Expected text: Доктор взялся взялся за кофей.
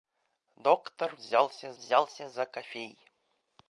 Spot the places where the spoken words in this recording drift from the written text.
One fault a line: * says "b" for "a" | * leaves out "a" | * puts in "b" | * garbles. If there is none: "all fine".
all fine